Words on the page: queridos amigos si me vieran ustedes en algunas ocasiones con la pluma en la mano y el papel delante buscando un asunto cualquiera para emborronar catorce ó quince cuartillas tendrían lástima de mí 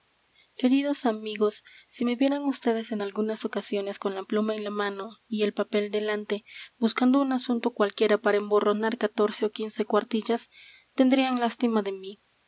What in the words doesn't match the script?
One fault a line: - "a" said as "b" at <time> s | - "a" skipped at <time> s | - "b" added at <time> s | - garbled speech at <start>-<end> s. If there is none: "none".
none